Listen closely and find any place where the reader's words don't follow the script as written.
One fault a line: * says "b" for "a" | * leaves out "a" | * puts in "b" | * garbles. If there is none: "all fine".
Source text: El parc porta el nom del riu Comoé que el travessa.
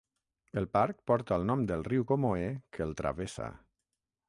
all fine